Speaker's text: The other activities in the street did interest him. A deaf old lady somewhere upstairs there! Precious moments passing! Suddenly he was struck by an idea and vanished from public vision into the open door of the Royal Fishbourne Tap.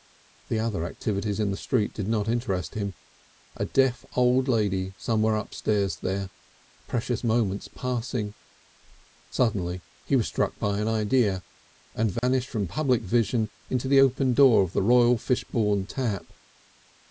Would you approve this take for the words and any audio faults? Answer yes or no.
no